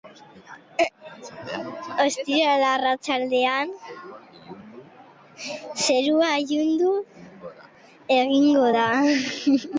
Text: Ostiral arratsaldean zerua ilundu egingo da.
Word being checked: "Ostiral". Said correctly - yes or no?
yes